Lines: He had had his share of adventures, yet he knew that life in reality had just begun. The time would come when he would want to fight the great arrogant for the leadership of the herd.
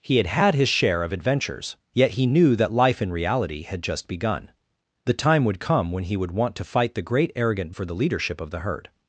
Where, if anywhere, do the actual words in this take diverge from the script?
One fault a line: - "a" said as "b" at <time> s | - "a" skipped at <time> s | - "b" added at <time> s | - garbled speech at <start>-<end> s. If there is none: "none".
none